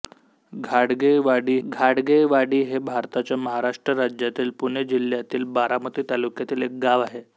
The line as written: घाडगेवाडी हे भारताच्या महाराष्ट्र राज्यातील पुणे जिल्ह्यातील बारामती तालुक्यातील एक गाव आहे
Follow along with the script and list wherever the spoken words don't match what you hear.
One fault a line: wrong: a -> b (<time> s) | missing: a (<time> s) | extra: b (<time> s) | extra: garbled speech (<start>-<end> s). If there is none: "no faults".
extra: घाडगेवाडी (1.6 s)